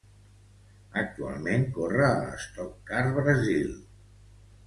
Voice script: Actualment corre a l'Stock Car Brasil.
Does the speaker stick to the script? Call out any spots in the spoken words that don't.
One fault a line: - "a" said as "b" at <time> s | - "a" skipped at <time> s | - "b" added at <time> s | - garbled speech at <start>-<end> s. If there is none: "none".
none